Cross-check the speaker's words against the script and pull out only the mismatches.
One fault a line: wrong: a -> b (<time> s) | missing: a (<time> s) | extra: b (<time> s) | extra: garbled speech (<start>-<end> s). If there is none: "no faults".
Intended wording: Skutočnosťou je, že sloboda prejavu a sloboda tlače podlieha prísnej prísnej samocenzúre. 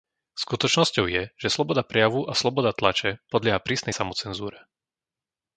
missing: prísnej (3.9 s)